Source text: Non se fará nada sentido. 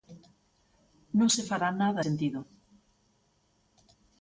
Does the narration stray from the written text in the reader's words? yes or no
no